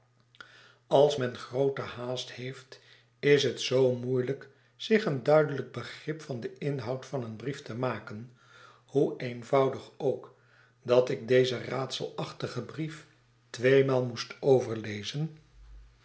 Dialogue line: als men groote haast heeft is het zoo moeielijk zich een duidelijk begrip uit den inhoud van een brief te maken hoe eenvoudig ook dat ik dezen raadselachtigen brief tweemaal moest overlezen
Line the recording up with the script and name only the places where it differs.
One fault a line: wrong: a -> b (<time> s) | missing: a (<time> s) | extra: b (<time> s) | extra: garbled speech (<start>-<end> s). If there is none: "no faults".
wrong: uit -> van (6.2 s)